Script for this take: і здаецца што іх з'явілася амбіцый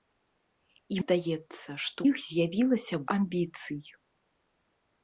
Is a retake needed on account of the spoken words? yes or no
no